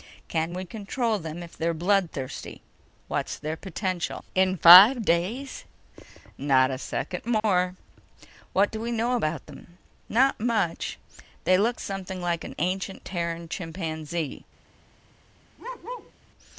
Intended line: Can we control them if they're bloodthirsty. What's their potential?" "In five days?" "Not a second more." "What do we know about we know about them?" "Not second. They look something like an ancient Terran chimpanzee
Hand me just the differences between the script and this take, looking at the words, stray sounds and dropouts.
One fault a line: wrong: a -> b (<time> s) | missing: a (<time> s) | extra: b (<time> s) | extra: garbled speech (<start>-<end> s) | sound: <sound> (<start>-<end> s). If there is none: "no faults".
sound: dropout (7.4-7.4 s)
missing: we know about (9.5 s)
wrong: second -> much (10.4 s)
sound: bark (15.6-16.1 s)